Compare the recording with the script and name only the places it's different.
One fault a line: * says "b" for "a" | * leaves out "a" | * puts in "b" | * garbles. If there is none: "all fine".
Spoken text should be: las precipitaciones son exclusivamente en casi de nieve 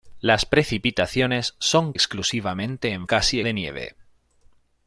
all fine